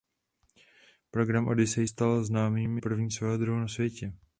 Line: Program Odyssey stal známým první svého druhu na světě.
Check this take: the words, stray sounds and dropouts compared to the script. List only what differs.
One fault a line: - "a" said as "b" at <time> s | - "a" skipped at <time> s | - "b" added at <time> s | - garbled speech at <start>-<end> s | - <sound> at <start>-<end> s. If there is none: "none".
none